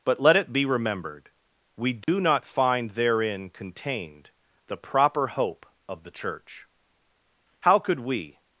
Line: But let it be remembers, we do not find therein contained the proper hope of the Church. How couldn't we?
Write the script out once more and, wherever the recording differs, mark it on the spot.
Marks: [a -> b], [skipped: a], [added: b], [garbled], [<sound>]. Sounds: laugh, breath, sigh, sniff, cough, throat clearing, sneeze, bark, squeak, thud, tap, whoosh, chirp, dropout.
But let it be [remembers, -> remembered] we do [dropout] not find therein contained the proper hope of the Church. How [couldn't -> could] we?